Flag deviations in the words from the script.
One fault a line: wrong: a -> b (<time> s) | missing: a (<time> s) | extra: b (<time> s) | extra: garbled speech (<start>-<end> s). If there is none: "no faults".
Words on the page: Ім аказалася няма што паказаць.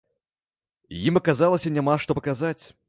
no faults